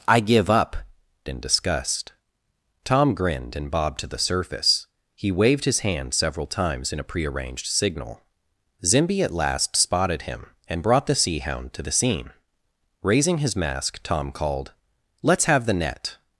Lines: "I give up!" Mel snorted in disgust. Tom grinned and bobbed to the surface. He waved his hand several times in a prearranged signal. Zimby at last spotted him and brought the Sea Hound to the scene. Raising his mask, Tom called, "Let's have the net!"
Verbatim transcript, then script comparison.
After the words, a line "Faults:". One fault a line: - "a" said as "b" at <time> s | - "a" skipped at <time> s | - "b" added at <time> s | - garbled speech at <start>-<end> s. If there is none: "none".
"I give up!" In disgust. Tom grinned and bobbed to the surface. He waved his hand several times in a prearranged signal. Zimby at last spotted him and brought the Sea Hound to the scene. Raising his mask, Tom called, "Let's have the net!"
Faults:
- "Mel snorted" skipped at 0.8 s